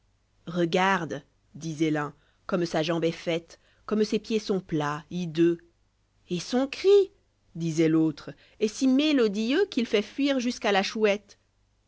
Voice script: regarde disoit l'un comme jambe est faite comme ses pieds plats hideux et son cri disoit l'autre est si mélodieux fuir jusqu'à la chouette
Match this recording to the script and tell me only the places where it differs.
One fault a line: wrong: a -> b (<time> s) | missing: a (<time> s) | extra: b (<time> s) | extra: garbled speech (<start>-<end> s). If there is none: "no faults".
extra: sa (2.6 s)
extra: sont (4.4 s)
extra: qu'il fait (9.7 s)